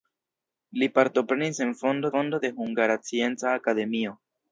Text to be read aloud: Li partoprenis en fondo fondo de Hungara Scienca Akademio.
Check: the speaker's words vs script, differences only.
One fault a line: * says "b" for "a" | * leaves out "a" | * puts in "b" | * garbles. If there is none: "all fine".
all fine